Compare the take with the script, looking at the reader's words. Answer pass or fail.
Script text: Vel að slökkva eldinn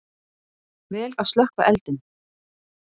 pass